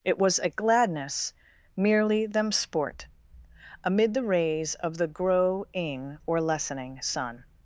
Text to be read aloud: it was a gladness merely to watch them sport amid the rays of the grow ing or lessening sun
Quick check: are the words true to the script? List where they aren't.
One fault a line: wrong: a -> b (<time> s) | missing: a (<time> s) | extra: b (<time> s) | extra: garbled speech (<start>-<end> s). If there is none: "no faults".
missing: to watch (2.2 s)